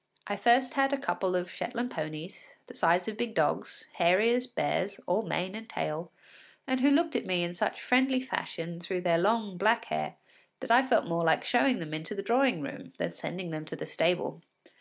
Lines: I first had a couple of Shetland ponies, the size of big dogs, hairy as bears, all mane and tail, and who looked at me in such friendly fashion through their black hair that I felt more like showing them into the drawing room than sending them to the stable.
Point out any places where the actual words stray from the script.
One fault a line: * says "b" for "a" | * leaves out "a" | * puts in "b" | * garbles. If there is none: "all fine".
* puts in "long"